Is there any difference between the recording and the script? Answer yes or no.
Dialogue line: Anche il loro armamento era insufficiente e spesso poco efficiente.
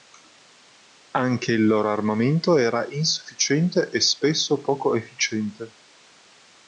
no